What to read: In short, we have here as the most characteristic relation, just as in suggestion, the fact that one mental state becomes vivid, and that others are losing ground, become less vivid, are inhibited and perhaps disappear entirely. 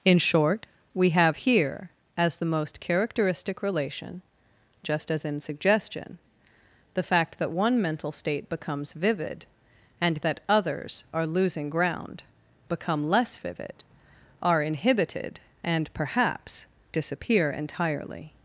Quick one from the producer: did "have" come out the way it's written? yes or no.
yes